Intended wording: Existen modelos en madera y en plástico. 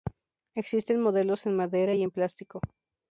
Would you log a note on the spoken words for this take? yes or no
no